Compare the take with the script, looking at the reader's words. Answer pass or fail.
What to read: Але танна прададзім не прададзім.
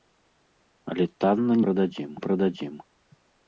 pass